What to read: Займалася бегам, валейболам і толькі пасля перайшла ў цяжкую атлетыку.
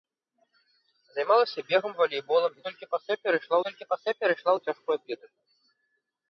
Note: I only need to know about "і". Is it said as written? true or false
true